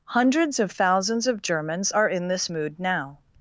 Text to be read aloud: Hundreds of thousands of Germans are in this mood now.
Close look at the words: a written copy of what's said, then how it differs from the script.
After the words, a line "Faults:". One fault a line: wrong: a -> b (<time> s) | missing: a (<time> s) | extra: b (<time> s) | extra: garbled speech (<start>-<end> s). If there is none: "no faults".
Hundreds of thousands of Germans are in this mood now.
Faults:
no faults